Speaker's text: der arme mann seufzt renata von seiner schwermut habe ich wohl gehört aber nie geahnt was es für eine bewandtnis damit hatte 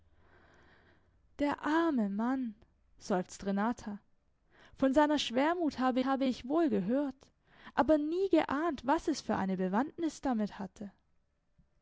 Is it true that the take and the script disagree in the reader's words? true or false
true